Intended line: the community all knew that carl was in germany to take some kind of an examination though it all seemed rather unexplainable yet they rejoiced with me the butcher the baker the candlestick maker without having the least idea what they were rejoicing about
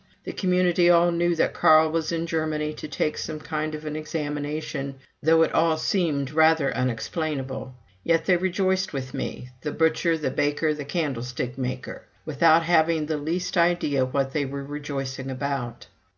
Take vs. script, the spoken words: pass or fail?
pass